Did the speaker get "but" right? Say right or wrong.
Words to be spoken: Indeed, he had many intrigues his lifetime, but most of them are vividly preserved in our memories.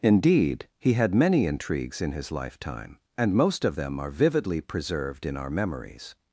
wrong